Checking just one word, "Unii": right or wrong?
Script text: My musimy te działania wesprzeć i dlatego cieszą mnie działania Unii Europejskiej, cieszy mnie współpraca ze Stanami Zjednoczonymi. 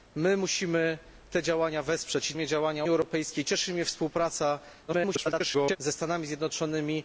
wrong